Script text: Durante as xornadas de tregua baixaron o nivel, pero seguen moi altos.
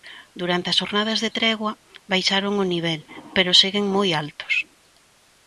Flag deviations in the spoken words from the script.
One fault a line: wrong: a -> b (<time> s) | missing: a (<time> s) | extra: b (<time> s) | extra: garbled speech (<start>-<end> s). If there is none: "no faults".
no faults